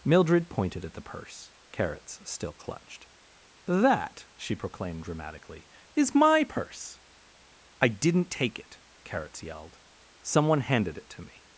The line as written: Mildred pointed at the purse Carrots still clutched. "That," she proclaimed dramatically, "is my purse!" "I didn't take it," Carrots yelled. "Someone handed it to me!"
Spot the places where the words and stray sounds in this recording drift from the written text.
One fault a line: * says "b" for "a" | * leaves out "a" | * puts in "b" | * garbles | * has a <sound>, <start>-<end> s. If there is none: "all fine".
all fine